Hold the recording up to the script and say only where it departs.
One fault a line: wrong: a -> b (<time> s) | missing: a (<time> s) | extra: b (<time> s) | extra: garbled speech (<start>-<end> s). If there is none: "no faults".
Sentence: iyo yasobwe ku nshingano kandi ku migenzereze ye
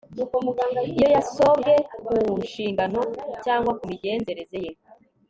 wrong: kandi -> cyangwa (3.4 s)